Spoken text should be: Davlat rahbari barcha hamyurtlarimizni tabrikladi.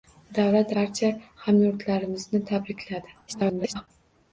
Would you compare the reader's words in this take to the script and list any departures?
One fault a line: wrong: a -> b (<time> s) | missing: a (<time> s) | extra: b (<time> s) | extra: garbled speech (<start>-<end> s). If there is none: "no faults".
missing: rahbari (0.7 s)
extra: garbled speech (3.3-3.9 s)